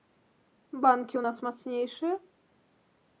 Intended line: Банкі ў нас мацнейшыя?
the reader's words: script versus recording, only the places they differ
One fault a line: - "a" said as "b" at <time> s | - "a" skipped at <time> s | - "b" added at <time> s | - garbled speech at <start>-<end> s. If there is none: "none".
none